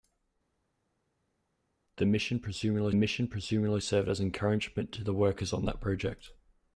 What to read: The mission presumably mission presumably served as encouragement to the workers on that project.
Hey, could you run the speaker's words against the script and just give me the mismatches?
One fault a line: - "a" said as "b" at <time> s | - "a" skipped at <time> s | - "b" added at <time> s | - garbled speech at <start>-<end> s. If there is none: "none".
none